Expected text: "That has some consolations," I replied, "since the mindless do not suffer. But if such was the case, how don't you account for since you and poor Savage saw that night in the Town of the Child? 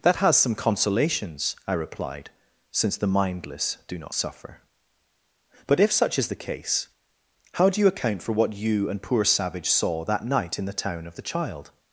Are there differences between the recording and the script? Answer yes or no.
yes